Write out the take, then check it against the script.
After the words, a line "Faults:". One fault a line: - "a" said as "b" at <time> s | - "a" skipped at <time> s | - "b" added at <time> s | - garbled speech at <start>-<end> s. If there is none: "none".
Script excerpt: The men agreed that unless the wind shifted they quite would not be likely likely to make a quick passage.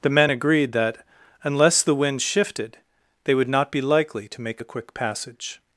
The men agreed that unless the wind shifted they would not be likely to make a quick passage.
Faults:
- "quite" skipped at 3.3 s
- "likely" skipped at 4.3 s